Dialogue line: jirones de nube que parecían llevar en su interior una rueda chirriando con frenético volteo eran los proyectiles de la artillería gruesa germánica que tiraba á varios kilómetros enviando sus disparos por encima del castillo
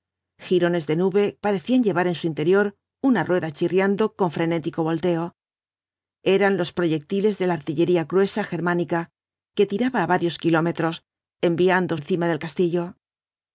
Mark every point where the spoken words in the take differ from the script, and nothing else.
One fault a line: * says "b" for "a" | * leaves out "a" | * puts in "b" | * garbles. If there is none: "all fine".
* leaves out "que"
* leaves out "sus disparos por"